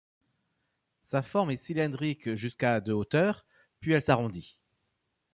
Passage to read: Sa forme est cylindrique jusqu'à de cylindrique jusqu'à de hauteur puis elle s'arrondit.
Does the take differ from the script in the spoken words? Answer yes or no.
yes